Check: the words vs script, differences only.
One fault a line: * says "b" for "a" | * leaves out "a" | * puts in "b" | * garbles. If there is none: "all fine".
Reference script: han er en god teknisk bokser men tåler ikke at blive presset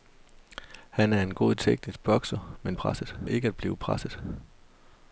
* says "presset" for "tåler"